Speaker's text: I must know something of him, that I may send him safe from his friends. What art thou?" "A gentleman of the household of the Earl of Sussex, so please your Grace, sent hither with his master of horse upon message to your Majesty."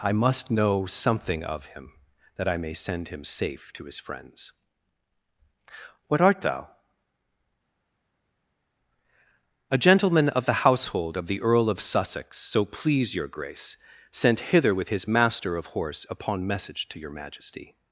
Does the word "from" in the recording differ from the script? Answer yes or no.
yes